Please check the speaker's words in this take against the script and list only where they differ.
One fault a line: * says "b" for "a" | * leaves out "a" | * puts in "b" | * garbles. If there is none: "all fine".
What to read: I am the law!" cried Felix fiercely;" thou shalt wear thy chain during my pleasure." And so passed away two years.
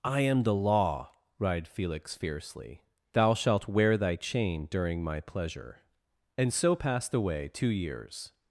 all fine